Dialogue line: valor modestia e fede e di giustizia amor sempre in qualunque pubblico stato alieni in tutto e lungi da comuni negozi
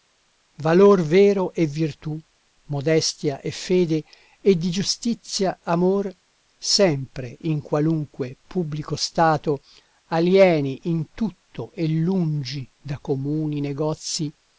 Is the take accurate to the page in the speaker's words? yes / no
no